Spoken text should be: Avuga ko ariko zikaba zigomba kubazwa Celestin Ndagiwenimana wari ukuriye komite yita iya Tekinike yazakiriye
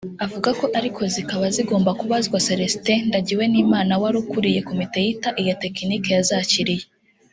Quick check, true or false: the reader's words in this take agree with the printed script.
true